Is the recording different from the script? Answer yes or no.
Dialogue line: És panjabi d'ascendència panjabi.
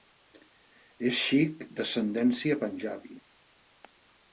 yes